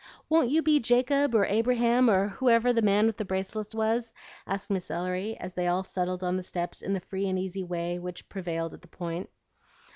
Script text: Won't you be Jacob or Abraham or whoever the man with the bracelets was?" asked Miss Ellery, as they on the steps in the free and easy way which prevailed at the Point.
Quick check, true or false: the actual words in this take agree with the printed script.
false